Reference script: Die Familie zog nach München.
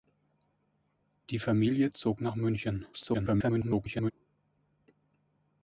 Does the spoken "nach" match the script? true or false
true